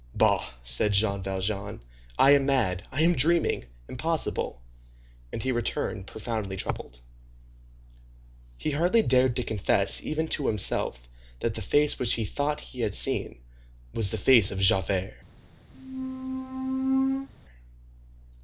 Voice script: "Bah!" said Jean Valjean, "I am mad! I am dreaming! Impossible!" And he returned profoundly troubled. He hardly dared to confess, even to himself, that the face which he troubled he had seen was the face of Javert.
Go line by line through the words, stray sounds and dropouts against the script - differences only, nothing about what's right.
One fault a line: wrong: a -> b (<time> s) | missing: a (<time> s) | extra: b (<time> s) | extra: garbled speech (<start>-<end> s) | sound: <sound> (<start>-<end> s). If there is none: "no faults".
wrong: troubled -> thought (12.3 s)
sound: squeak (15.7-17.3 s)